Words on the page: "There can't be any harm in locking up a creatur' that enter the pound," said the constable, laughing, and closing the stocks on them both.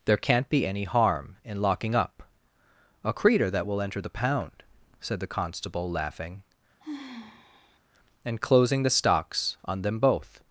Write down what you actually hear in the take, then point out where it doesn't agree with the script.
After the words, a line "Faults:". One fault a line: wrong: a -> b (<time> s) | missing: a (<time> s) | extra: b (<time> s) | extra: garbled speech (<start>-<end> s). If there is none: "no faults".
"There can't be any harm in locking up a creatur' that will enter the pound," said the constable, laughing, and closing the stocks on them both.
Faults:
extra: will (3.7 s)